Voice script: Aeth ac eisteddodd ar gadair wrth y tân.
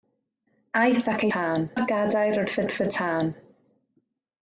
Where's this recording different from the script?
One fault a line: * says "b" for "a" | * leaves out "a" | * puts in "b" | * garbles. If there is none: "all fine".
* says "tân" for "eisteddodd"
* puts in "wrth"